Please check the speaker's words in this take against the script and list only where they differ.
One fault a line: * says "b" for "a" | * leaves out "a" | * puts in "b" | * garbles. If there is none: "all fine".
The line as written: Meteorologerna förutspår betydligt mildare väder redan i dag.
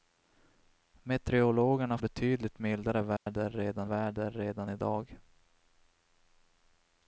* leaves out "förutspår"
* puts in "väder redan"